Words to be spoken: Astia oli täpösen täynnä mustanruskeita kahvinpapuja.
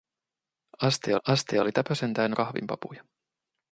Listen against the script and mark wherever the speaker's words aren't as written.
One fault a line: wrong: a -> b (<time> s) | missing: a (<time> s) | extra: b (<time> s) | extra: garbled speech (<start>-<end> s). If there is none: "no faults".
extra: astia (1.3 s)
missing: mustanruskeita (2.4 s)